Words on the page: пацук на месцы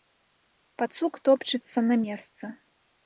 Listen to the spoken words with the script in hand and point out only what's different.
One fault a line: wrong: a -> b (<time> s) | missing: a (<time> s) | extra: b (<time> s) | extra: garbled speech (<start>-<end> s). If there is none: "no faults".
extra: топчацца (1.3 s)